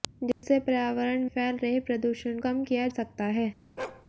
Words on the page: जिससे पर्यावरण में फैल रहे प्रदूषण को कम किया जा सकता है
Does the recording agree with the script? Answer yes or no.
no